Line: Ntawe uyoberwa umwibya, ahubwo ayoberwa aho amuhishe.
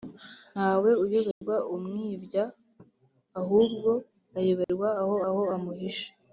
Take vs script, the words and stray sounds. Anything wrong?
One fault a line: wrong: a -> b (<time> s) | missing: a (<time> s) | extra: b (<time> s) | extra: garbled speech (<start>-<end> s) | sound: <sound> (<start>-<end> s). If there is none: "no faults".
sound: dropout (1.3-1.4 s)
sound: dropout (4.6-4.7 s)
extra: aho (5.3 s)